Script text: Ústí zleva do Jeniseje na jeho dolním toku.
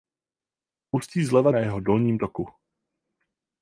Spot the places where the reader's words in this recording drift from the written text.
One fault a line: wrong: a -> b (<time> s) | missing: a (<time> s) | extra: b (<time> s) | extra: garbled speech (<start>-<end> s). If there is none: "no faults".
missing: do Jeniseje (1.5 s)